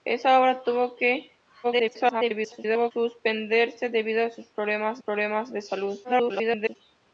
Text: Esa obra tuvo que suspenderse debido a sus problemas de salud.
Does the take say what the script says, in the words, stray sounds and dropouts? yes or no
no